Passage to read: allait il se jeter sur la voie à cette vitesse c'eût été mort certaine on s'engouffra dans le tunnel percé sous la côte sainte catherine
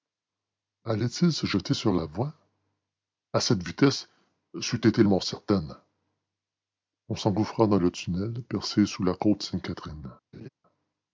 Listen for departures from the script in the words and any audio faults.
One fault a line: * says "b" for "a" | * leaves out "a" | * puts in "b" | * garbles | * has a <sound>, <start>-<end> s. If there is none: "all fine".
* has a laugh, 10.3-10.5 s